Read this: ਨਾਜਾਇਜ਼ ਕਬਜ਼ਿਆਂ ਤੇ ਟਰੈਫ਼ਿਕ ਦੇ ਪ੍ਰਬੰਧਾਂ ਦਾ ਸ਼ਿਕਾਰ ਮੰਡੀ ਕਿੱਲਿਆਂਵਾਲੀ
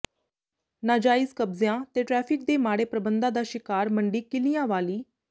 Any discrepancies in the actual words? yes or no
yes